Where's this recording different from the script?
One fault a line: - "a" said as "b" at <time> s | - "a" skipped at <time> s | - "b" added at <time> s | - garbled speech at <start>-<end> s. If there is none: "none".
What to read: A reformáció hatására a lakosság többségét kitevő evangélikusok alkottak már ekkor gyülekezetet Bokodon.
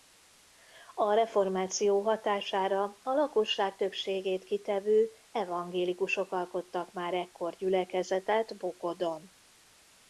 none